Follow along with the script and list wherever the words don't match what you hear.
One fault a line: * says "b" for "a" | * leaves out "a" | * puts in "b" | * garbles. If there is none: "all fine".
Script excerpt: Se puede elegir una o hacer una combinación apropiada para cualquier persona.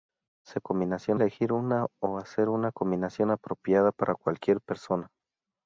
* says "combinación" for "puede"